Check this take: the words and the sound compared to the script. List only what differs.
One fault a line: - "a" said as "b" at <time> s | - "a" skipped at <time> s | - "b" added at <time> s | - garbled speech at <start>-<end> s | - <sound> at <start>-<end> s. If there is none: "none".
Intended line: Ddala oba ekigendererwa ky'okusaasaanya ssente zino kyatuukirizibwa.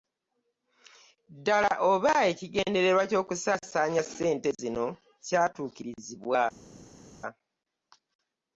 none